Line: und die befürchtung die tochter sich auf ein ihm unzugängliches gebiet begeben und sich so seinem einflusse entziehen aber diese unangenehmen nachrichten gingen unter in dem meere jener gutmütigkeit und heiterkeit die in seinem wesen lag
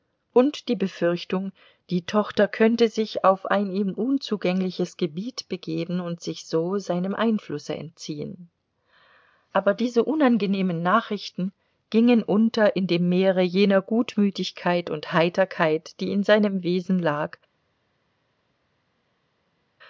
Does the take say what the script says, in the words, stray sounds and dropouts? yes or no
no